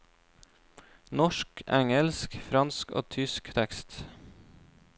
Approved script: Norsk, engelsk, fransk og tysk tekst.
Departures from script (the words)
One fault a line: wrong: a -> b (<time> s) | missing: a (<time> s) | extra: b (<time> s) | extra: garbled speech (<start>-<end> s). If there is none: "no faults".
no faults